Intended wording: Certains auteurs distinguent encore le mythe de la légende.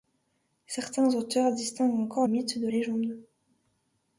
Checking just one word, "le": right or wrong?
wrong